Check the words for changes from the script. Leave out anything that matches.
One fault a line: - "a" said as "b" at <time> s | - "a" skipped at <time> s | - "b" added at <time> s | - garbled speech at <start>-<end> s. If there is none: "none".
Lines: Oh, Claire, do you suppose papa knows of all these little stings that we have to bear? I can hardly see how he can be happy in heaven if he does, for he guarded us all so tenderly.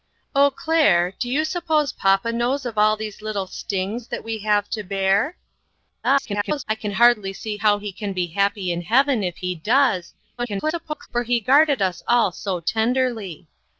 - garbled speech at 6.0-6.6 s
- garbled speech at 10.4-11.1 s